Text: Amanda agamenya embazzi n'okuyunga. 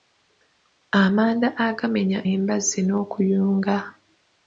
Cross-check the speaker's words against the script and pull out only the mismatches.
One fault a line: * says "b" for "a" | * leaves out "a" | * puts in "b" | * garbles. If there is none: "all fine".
all fine